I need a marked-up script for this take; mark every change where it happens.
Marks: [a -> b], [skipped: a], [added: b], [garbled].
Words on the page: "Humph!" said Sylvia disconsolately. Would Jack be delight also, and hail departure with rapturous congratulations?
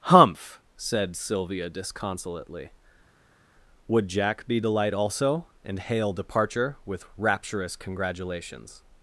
"Humph!" said Sylvia disconsolately. Would Jack be delight also, and hail departure with rapturous congratulations?